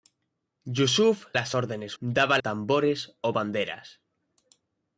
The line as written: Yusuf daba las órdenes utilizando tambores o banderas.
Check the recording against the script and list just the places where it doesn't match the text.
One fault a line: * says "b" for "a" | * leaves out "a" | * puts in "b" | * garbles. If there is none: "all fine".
* leaves out "daba"
* says "daba" for "utilizando"